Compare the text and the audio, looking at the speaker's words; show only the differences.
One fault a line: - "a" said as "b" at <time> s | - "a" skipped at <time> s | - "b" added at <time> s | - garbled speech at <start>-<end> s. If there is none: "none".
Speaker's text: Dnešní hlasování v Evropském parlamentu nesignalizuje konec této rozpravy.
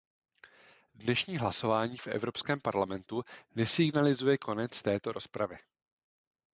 none